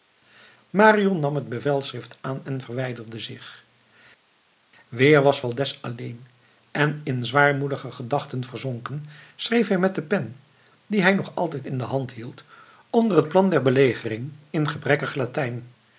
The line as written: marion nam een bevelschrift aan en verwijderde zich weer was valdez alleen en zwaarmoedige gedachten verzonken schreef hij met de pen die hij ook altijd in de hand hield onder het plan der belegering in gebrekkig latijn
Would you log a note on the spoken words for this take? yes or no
yes